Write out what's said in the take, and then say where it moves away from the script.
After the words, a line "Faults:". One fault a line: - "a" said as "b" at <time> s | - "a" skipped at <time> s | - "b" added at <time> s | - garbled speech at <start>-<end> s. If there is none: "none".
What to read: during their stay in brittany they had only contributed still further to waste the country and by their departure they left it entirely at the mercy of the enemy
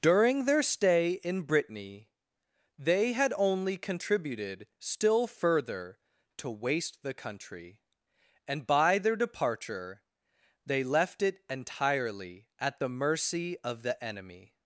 during their stay in brittany they had only contributed still further to waste the country and by their departure they left it entirely at the mercy of the enemy
Faults:
none